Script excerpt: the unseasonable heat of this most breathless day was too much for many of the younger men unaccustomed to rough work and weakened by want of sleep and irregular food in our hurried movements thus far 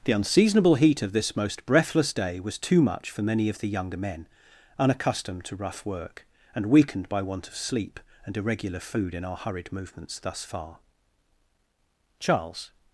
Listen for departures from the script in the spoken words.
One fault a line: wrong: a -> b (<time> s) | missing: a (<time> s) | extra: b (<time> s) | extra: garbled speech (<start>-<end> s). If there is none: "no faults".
extra: charles (12.2 s)